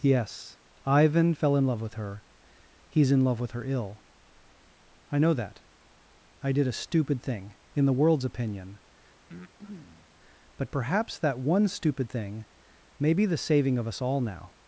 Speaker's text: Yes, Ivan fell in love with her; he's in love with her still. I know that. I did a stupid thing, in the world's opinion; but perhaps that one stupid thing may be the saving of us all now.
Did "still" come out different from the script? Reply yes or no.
yes